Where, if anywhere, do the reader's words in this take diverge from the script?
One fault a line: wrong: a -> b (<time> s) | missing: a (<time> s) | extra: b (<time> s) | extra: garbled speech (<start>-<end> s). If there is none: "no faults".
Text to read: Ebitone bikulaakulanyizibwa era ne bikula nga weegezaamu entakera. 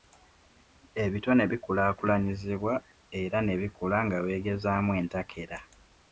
no faults